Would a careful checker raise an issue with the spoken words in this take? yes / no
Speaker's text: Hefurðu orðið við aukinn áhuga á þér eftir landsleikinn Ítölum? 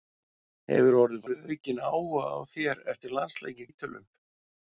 no